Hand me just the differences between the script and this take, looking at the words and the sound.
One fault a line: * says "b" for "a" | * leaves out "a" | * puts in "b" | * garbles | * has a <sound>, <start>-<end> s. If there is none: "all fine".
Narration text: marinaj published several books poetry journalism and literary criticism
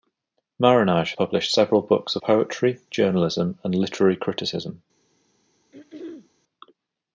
* has a throat clearing, 5.7-6.3 s